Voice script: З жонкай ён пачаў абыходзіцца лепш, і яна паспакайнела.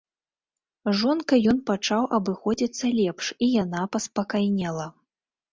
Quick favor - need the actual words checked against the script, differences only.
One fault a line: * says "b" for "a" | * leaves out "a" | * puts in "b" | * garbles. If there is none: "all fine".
all fine